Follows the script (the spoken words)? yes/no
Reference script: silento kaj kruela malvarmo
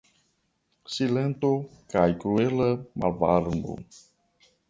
yes